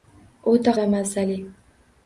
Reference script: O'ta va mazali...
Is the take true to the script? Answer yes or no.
yes